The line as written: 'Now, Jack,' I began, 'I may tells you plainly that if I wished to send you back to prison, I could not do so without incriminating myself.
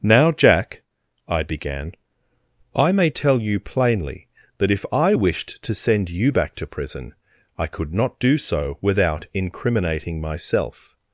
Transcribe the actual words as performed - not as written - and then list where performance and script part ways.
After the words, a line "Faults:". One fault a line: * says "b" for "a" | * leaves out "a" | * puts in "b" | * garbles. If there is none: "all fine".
'Now, Jack,' I began, 'I may tell you plainly that if I wished to send you back to prison, I could not do so without incriminating myself.
Faults:
* says "tell" for "tells"